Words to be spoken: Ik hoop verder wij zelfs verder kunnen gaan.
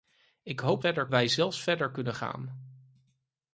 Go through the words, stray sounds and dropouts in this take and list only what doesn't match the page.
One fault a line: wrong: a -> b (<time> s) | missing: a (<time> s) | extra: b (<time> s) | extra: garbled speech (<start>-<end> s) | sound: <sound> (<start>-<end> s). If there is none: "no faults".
no faults